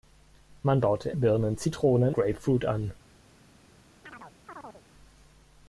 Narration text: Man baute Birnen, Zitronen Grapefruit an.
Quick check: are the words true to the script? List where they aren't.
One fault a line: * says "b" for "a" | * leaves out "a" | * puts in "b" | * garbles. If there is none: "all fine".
all fine